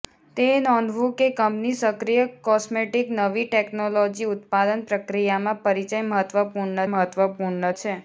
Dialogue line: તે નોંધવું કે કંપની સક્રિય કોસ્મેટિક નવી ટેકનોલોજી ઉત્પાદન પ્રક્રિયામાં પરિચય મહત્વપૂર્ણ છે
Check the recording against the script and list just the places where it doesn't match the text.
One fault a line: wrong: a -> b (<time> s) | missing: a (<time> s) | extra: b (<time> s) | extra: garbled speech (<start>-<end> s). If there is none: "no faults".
extra: મહત્વપૂર્ણ (6.9 s)